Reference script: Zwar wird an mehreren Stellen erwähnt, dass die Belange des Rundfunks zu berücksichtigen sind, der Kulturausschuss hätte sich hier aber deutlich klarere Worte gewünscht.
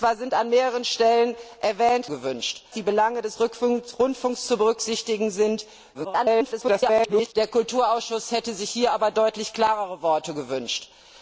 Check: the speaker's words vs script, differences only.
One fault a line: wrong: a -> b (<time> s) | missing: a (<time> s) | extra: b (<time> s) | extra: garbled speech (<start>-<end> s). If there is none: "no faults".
wrong: dass -> gewünscht (2.1 s)
extra: garbled speech (5.9-7.3 s)